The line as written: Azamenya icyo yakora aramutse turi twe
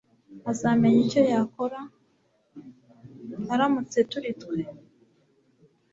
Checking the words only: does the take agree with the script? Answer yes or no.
yes